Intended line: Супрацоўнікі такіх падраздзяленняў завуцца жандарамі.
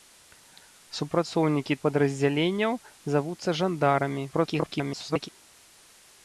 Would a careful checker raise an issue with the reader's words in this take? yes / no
yes